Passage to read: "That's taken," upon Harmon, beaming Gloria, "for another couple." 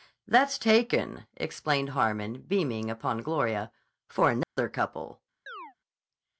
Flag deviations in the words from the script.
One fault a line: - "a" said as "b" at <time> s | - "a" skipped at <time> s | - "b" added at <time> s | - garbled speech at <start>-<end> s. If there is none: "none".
- "upon" said as "explained" at 1.4 s
- "upon" added at 2.9 s